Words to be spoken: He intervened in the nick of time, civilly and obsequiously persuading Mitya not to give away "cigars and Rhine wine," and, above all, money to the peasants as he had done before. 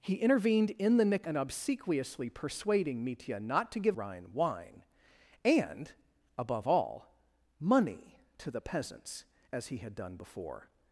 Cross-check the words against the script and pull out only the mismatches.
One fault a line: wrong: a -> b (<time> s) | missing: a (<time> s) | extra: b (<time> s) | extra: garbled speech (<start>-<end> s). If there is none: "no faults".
missing: of time civilly (1.3 s)
missing: away cigars and (4.0 s)